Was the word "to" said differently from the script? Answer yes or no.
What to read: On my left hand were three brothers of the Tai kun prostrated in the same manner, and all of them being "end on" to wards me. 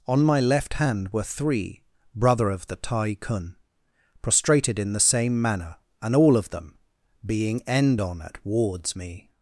yes